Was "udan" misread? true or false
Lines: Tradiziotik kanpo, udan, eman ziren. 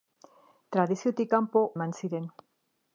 true